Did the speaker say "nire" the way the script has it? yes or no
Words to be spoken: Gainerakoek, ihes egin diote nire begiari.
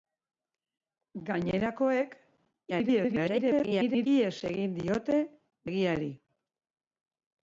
no